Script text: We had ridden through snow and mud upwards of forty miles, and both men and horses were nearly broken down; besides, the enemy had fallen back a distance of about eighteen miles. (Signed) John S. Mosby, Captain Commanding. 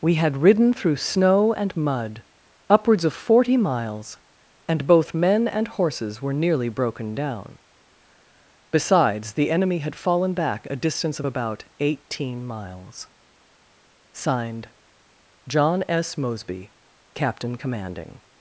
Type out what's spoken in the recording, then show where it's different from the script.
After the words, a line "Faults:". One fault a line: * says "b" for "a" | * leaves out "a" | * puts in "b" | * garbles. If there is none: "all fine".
We had ridden through snow and mud upwards of forty miles, and both men and horses were nearly broken down; besides, the enemy had fallen back a distance of about eighteen miles. (Signed) John S. Mosby, Captain Commanding.
Faults:
all fine